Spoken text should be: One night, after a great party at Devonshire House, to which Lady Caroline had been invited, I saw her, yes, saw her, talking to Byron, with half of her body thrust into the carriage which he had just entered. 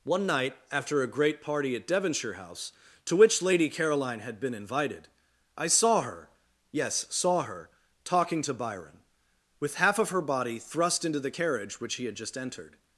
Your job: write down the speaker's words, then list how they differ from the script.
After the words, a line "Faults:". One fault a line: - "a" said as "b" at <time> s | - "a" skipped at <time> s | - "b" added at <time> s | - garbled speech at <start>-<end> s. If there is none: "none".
One night, after a great party at Devonshire House, to which Lady Caroline had been invited, I saw her, yes, saw her, talking to Byron, with half of her body thrust into the carriage which he had just entered.
Faults:
none